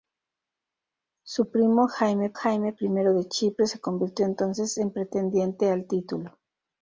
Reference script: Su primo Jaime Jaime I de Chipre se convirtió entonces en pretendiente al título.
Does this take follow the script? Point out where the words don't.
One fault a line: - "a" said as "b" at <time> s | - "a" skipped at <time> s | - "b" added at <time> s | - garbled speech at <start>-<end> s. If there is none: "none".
none